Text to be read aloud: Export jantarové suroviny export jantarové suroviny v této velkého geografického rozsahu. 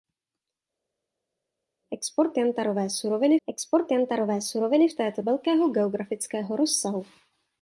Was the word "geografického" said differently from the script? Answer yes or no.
no